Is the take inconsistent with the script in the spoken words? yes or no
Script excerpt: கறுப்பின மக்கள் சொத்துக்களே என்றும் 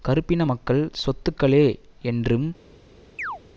no